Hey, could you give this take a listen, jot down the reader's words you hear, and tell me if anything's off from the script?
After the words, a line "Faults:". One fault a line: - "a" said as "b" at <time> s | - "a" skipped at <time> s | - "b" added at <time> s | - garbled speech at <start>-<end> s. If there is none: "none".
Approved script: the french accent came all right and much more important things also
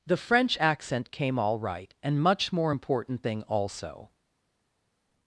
the french accent came all right and much more important thing also
Faults:
- "things" said as "thing" at 3.2 s